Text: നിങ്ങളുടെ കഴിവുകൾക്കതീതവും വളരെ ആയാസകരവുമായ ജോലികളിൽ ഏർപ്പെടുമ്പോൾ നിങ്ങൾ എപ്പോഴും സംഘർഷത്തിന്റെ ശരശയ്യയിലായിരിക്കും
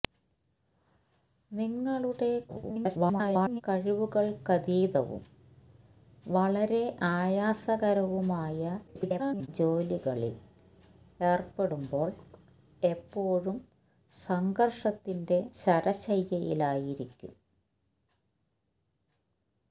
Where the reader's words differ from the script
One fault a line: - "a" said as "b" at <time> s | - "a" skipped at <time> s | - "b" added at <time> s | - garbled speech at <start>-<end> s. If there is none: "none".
- garbled speech at 2.5-3.6 s
- garbled speech at 8.9-9.5 s
- "നിങ്ങൾ" skipped at 12.1 s